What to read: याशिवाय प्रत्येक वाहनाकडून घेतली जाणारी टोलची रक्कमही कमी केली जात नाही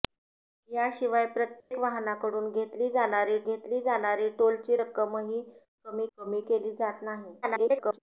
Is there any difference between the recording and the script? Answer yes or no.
yes